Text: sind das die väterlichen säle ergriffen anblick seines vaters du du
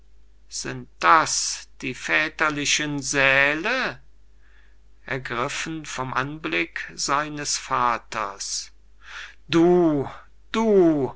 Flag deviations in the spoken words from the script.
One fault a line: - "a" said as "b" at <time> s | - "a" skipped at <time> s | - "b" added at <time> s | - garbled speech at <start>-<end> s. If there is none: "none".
- "vom" added at 5.8 s